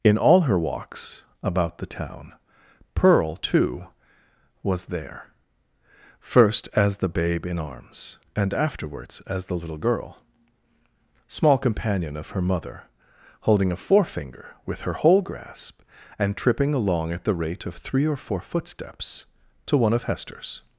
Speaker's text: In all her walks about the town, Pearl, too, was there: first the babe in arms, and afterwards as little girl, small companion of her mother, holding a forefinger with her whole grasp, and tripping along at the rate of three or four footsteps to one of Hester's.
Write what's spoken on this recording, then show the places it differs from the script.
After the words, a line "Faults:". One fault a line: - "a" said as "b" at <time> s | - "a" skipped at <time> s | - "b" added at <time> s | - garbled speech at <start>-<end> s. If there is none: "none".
In all her walks about the town, Pearl, too, was there: first as the babe in arms, and afterwards as the little girl, small companion of her mother, holding a forefinger with her whole grasp, and tripping along at the rate of three or four footsteps to one of Hester's.
Faults:
- "as" added at 6.8 s
- "the" added at 9.4 s